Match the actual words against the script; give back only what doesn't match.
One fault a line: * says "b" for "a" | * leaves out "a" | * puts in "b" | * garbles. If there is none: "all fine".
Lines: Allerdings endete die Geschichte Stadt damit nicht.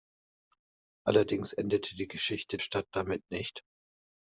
all fine